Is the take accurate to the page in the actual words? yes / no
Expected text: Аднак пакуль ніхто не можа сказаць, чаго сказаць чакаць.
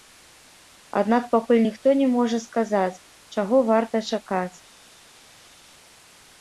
no